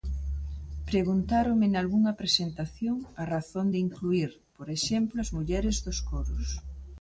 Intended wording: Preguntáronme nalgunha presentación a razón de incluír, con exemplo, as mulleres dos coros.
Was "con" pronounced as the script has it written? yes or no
no